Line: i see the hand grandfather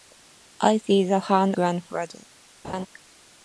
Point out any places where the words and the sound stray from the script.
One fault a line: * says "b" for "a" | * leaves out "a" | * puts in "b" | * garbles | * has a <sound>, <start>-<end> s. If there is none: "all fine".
* has a laugh, 2.6-2.9 s